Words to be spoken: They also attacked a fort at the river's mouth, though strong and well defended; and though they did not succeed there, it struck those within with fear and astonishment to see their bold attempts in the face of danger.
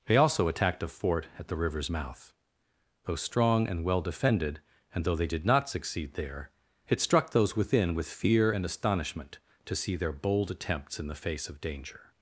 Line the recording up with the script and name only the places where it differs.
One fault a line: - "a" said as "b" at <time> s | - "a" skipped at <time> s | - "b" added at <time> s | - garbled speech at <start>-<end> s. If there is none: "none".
none